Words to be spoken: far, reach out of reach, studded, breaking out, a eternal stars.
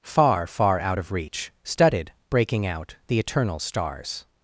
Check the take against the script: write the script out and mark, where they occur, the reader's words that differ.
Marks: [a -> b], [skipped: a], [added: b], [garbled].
far, [reach -> far] out of reach, studded, breaking out, [a -> the] eternal stars.